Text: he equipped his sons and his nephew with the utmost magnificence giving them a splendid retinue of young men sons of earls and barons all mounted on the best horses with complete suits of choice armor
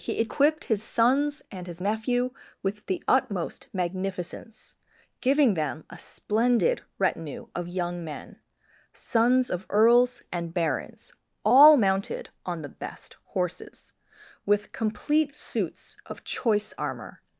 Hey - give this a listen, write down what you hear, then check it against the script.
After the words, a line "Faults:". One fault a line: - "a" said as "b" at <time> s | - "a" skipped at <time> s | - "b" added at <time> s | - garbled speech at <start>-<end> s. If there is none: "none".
he equipped his sons and his nephew with the utmost magnificence giving them a splendid retinue of young men sons of earls and barons all mounted on the best horses with complete suits of choice armor
Faults:
none